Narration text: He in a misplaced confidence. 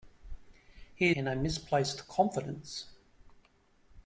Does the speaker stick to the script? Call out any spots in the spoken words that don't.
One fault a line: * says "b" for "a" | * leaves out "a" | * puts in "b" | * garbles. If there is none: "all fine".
all fine